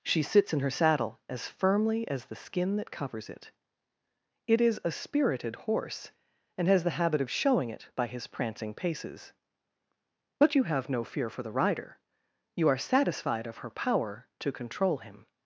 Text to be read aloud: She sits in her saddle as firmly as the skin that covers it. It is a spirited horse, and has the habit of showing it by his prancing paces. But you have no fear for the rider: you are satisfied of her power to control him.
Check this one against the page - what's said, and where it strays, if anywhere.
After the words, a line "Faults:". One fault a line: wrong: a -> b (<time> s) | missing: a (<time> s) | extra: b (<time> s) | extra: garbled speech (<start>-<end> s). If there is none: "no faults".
She sits in her saddle as firmly as the skin that covers it. It is a spirited horse, and has the habit of showing it by his prancing paces. But you have no fear for the rider: you are satisfied of her power to control him.
Faults:
no faults